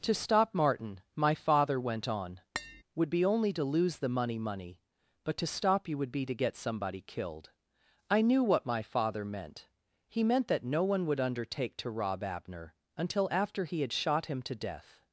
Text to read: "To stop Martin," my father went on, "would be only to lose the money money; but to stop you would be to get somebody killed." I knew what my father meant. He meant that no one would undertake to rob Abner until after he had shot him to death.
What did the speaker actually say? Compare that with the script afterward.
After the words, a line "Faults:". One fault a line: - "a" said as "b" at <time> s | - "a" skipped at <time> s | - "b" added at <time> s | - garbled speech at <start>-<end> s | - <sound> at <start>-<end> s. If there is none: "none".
"To stop Martin," my father went on, "would be only to lose the money money; but to stop you would be to get somebody killed." I knew what my father meant. He meant that no one would undertake to rob Abner until after he had shot him to death.
Faults:
- tap at 2.5-2.8 s